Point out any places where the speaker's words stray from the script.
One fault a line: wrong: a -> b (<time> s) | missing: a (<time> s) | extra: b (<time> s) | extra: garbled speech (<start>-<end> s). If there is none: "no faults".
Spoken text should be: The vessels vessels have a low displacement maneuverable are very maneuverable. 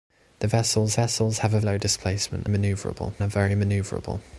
no faults